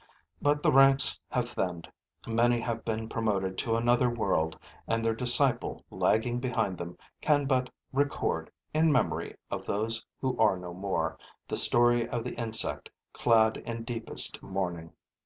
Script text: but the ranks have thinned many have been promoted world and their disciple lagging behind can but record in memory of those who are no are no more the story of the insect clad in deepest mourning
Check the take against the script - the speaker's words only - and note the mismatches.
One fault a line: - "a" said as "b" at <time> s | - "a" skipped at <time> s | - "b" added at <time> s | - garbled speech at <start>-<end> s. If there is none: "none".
- "to another" added at 3.6 s
- "them" added at 6.8 s
- "are no" skipped at 10.7 s